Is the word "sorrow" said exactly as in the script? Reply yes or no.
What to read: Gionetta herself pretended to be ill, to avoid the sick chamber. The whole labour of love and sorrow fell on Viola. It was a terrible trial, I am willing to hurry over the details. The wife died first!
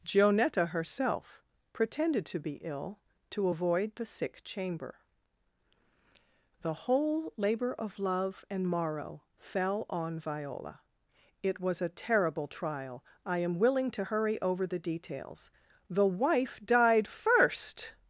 no